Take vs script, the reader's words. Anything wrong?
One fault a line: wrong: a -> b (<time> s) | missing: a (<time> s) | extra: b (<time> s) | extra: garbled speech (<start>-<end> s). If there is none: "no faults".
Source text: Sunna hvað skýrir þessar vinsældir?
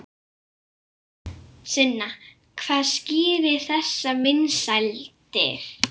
no faults